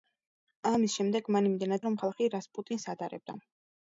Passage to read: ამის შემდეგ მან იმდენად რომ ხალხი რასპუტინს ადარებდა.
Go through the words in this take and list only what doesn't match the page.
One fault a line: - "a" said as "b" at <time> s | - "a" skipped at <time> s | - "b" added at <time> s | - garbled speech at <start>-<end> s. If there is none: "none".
none